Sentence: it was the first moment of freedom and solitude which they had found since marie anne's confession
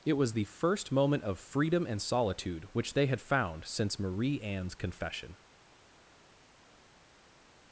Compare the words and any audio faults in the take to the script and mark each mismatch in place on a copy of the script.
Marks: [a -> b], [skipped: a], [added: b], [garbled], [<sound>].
it was the first moment of freedom and solitude which they had found since marie anne's confession